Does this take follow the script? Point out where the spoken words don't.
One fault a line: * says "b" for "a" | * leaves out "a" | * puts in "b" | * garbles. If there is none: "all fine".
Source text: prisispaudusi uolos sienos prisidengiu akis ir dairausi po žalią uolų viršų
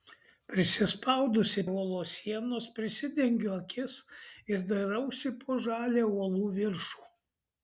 all fine